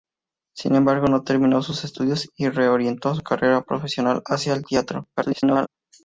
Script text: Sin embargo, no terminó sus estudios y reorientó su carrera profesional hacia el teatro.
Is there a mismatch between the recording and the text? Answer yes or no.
yes